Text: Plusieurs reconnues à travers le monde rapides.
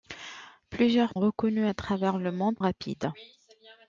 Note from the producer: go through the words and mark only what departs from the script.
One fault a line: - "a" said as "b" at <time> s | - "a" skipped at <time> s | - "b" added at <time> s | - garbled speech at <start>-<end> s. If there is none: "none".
none